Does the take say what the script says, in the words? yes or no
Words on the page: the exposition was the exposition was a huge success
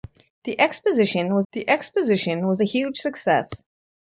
yes